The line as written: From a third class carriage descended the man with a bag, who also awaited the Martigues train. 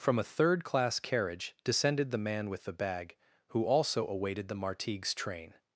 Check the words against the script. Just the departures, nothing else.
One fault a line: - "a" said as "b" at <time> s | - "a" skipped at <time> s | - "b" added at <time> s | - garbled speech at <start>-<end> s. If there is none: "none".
- "a" said as "the" at 2.6 s